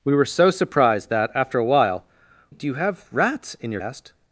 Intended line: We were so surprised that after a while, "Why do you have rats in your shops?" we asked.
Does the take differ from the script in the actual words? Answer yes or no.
yes